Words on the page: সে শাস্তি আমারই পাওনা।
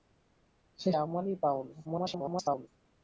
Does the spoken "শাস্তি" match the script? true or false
false